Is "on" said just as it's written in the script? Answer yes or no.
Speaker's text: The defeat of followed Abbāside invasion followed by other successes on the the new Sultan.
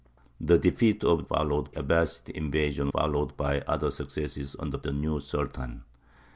yes